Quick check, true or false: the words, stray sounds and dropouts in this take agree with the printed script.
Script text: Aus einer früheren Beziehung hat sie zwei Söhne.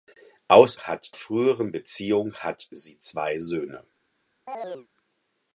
false